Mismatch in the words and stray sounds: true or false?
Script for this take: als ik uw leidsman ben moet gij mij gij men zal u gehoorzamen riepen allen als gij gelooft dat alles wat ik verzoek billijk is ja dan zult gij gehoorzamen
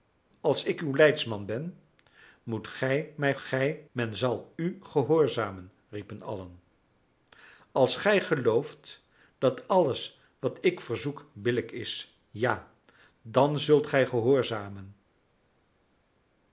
false